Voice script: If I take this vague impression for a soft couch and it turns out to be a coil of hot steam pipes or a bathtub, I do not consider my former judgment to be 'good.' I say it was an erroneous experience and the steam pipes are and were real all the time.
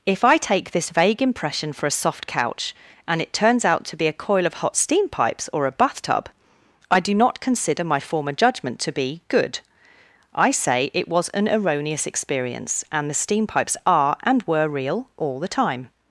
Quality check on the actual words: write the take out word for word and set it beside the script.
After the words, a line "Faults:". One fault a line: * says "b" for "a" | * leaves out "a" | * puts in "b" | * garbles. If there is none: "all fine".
If I take this vague impression for a soft couch and it turns out to be a coil of hot steam pipes or a bathtub, I do not consider my former judgment to be 'good.' I say it was an erroneous experience and the steam pipes are and were real all the time.
Faults:
all fine